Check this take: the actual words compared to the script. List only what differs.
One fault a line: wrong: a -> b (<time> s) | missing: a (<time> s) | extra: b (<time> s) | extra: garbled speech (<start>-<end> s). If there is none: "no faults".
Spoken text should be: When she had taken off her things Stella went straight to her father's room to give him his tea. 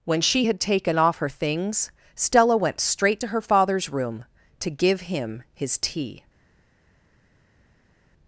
no faults